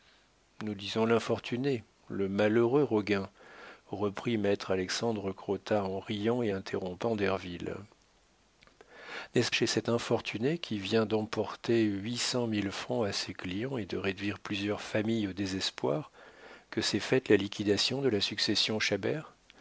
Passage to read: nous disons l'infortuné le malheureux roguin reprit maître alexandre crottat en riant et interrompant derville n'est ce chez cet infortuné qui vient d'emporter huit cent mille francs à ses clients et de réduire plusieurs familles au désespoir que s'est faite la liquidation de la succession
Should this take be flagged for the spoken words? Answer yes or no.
no